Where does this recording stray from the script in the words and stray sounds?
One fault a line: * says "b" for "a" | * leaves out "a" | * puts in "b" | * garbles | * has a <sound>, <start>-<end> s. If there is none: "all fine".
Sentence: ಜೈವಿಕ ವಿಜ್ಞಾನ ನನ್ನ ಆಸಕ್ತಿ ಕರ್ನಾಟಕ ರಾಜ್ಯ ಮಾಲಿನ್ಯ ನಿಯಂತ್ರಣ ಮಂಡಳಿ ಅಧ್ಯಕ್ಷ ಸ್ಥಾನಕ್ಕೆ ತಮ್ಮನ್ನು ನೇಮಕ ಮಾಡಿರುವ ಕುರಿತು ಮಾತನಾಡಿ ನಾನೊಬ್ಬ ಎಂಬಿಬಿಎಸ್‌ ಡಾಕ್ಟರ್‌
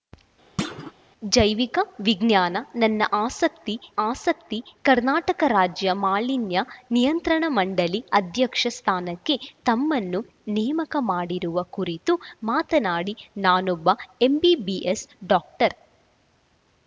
* has a thud, 0.6-0.9 s
* puts in "ಆಸಕ್ತಿ"